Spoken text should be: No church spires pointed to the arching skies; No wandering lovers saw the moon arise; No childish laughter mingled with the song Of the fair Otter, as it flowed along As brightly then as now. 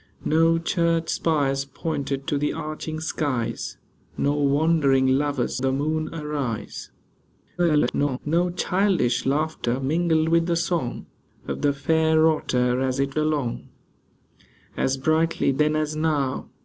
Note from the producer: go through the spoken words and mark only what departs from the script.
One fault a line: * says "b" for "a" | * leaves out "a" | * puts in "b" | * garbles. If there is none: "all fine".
* leaves out "saw"
* garbles
* leaves out "flowed"